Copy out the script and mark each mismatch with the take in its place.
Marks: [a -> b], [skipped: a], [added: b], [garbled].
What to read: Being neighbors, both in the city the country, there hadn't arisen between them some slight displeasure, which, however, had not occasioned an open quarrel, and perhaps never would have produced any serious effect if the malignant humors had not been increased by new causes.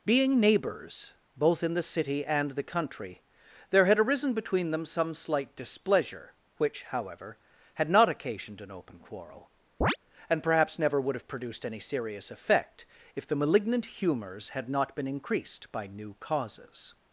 Being neighbors, both in the city [added: and] the country, there [hadn't -> had] arisen between them some slight displeasure, which, however, had not occasioned an open quarrel, and perhaps never would have produced any serious effect if the malignant humors had not been increased by new causes.